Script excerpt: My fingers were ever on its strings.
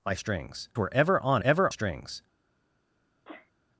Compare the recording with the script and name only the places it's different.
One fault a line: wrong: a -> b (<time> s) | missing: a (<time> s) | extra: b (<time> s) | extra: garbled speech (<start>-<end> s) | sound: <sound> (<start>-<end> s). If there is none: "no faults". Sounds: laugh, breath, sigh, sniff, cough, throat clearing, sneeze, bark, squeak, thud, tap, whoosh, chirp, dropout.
wrong: fingers -> strings (0.1 s)
wrong: its -> ever (1.4 s)
sound: sneeze (3.2-3.5 s)